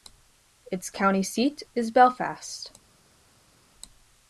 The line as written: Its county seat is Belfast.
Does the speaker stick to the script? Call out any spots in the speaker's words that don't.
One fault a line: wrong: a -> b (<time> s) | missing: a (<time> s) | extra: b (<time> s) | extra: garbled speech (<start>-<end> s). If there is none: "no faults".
no faults